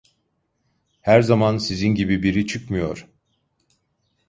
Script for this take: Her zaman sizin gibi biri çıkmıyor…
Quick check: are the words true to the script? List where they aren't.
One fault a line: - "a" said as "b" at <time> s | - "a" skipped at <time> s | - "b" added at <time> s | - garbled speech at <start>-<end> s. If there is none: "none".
none